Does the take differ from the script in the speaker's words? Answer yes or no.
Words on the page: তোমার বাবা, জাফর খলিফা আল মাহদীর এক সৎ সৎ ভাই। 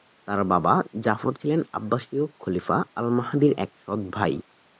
yes